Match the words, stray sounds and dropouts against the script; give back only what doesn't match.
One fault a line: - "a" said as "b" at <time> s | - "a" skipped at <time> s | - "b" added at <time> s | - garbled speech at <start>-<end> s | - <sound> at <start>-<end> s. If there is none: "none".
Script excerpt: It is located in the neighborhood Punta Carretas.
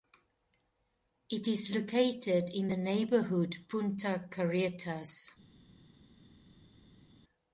none